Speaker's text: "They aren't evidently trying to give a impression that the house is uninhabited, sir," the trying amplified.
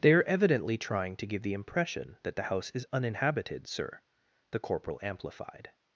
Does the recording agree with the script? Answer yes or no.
no